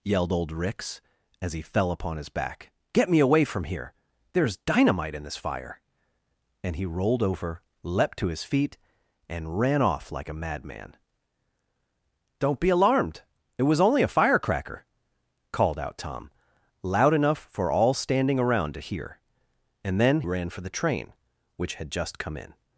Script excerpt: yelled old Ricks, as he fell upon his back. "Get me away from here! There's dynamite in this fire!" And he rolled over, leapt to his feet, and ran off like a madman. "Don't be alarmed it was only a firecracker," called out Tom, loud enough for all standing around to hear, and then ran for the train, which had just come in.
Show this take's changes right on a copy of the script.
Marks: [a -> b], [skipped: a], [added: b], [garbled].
yelled old Ricks, as he fell upon his back. "Get me away from here! There's dynamite in this fire!" And he rolled over, leapt to his feet, and ran off like a madman. "Don't be alarmed it was only a firecracker," called out Tom, loud enough for all standing around to hear, and then ran for the train, which had just come in.